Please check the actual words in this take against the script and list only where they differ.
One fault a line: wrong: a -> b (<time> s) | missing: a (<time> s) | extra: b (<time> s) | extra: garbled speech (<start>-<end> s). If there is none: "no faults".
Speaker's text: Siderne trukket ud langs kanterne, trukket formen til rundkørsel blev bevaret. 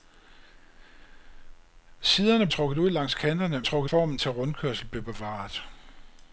no faults